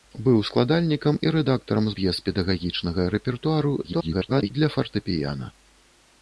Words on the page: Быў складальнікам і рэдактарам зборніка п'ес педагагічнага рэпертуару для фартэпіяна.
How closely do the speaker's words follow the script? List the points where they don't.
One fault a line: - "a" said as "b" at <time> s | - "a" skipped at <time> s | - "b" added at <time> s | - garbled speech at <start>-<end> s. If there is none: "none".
- "зборніка" skipped at 1.9 s
- garbled speech at 3.8-4.5 s